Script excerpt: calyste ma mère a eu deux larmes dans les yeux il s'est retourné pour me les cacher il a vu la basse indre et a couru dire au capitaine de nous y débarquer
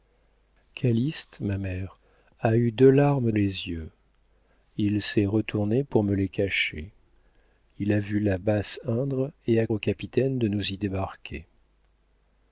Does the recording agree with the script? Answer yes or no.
no